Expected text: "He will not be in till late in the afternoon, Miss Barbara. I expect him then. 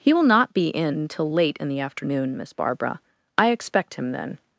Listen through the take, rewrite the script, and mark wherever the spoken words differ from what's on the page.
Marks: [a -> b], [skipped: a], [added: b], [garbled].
"He will not be in till late in the afternoon, Miss Barbara. I expect him then.